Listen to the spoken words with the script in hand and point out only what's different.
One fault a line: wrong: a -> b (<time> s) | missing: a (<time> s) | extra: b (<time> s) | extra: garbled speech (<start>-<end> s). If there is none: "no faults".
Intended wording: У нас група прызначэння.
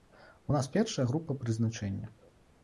extra: першая (0.7 s)